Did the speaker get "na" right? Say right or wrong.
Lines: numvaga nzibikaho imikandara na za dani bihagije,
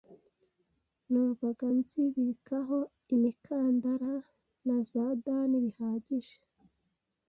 right